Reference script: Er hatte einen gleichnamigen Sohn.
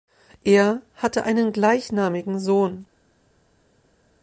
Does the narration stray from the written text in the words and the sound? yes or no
no